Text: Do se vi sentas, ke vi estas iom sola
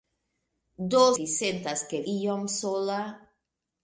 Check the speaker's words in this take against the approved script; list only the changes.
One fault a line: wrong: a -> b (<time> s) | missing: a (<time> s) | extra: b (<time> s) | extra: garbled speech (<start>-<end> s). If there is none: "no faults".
missing: se (1.0 s)
missing: vi estas (2.0 s)